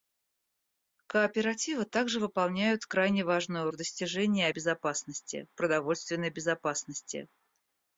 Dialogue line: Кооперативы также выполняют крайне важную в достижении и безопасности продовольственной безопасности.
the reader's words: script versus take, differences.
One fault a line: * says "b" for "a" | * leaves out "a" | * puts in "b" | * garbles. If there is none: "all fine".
all fine